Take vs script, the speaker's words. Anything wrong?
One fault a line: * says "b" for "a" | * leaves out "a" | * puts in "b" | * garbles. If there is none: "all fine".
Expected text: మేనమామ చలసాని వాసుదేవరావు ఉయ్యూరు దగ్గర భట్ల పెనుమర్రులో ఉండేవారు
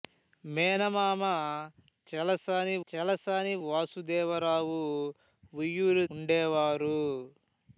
* puts in "చలసాని"
* leaves out "దగ్గర భట్ల పెనుమర్రులో"